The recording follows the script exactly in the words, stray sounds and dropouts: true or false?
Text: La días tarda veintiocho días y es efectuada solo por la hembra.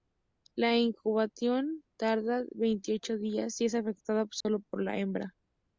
false